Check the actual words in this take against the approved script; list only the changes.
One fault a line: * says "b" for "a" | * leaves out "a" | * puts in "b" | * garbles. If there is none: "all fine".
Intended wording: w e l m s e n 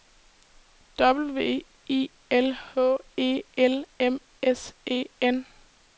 * puts in "i l h"